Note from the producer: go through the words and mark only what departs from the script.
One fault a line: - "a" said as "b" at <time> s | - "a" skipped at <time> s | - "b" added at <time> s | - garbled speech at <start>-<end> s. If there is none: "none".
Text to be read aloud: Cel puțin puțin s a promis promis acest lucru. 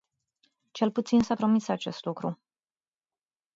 - "puțin" skipped at 1.2 s
- "promis" skipped at 1.7 s